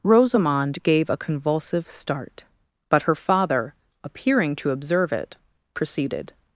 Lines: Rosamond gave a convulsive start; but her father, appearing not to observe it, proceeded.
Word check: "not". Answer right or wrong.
wrong